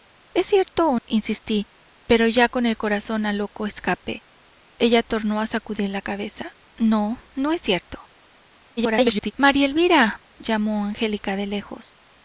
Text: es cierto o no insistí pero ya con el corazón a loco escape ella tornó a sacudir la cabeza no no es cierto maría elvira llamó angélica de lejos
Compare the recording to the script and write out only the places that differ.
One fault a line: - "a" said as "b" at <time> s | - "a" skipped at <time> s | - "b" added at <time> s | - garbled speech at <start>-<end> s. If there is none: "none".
- "no" skipped at 1.0 s
- garbled speech at 8.8-9.3 s